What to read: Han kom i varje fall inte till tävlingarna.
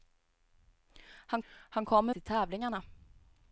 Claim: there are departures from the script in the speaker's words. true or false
true